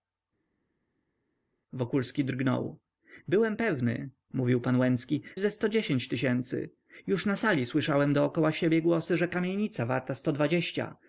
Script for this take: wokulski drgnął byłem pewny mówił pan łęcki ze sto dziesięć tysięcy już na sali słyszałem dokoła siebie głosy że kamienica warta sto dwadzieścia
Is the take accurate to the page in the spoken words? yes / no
yes